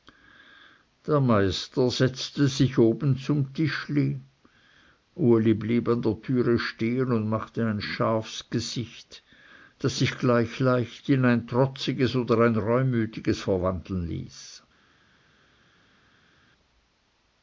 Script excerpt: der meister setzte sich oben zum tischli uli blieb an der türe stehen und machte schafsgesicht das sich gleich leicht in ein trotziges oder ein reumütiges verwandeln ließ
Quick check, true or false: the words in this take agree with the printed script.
false